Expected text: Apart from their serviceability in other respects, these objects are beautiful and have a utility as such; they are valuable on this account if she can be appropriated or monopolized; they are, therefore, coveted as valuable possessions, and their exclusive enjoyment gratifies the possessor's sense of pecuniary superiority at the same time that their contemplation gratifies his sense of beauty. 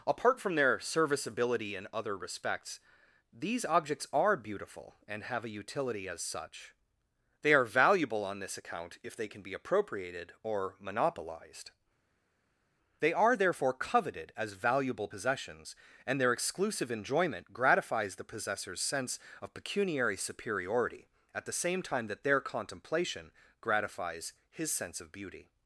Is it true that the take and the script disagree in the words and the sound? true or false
true